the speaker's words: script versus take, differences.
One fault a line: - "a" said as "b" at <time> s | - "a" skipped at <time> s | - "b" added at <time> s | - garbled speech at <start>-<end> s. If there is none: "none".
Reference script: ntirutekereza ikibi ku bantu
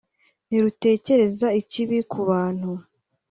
none